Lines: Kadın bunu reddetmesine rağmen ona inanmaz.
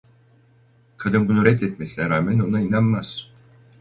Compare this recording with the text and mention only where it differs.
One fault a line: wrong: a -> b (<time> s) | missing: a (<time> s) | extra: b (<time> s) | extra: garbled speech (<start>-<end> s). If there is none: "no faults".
no faults